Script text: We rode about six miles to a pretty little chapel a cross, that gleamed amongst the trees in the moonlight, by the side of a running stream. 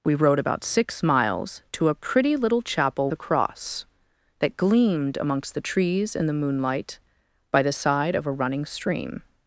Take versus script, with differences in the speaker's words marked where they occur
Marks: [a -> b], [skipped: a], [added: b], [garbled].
We rode about six miles to a pretty little chapel a cross, that gleamed amongst the trees in the moonlight, by the side of a running stream.